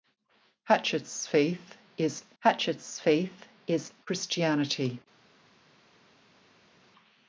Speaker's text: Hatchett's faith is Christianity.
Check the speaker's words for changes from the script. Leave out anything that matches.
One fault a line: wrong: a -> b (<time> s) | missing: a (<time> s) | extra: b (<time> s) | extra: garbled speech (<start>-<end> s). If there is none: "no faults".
extra: hatchett's faith is (2.4 s)